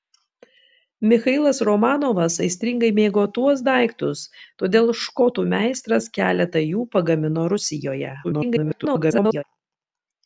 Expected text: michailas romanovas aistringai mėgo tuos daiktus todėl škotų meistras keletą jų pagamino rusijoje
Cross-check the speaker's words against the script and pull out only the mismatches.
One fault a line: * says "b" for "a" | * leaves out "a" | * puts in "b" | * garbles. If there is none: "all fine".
* garbles